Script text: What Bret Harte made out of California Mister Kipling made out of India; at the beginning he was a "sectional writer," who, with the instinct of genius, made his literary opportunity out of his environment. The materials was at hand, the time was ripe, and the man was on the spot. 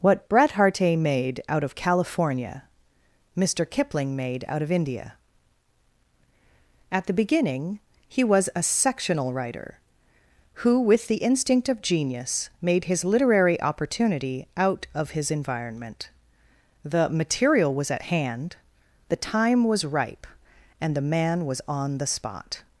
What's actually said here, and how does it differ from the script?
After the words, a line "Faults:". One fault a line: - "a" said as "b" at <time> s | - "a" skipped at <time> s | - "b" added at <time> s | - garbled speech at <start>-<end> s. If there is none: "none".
What Bret Harte made out of California Mister Kipling made out of India; at the beginning he was a "sectional writer," who, with the instinct of genius, made his literary opportunity out of his environment. The material was at hand, the time was ripe, and the man was on the spot.
Faults:
- "materials" said as "material" at 17.1 s